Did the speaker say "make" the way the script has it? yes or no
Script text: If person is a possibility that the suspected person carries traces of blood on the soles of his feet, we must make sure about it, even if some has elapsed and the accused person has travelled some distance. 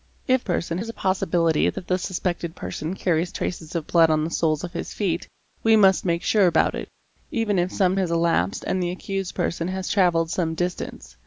yes